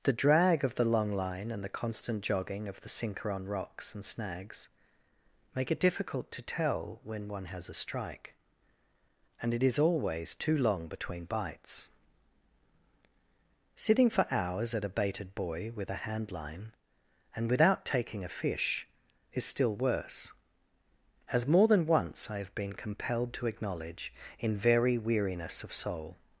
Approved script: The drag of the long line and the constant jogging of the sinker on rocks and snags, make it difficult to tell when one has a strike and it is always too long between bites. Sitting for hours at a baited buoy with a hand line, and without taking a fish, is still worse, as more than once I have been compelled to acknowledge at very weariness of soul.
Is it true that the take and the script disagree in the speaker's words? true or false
true